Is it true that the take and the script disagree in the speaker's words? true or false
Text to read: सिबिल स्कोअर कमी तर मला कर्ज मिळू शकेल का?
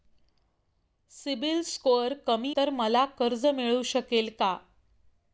false